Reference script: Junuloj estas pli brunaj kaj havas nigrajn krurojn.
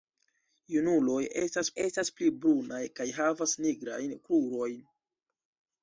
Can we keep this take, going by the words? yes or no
no